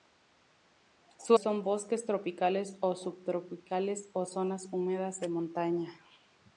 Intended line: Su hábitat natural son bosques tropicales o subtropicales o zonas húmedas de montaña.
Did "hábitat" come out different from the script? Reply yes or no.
yes